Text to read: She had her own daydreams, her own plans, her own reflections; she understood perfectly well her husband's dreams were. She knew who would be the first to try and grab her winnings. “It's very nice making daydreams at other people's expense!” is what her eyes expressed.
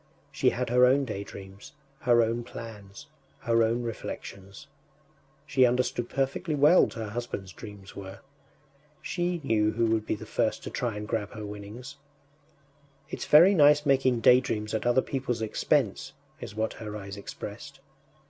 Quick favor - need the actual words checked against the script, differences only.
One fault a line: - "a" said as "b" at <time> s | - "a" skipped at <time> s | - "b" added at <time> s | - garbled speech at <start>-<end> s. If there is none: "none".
none